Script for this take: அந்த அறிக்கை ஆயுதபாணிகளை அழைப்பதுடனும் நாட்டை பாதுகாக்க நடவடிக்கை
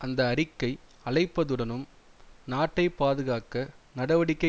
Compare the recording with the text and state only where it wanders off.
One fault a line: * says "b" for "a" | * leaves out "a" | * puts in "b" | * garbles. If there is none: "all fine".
* leaves out "ஆயுதபாணிகளை"